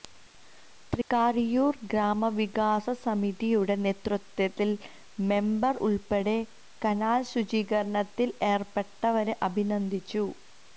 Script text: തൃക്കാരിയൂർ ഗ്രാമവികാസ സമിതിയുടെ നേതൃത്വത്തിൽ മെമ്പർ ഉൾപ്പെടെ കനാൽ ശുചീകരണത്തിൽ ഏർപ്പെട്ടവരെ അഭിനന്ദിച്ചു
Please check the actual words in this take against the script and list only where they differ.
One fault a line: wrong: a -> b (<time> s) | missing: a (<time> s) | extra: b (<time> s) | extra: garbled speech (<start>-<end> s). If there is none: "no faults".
no faults